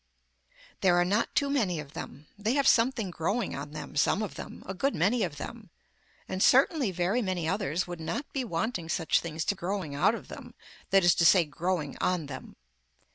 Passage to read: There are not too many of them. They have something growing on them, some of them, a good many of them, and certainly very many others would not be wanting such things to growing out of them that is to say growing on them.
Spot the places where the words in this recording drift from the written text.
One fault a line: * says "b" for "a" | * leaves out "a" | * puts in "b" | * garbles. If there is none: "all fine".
all fine